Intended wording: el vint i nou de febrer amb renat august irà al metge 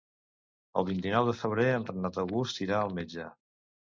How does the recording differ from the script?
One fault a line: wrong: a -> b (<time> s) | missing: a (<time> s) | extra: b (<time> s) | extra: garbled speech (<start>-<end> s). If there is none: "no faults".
wrong: amb -> en (1.7 s)